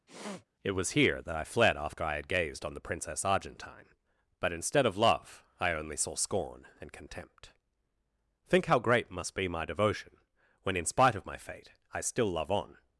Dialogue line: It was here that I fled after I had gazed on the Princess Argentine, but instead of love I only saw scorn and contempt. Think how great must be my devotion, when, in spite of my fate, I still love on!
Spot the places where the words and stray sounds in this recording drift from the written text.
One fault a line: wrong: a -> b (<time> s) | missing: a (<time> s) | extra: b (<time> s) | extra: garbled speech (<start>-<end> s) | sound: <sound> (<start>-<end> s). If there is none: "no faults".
sound: sniff (0.1-0.5 s)